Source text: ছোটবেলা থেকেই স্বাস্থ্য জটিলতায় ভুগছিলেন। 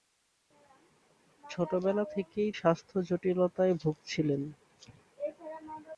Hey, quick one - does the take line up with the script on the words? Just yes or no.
yes